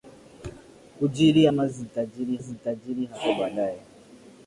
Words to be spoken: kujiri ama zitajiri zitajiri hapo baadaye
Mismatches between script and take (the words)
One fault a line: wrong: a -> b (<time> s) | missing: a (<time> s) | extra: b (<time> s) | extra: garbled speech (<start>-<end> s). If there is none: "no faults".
no faults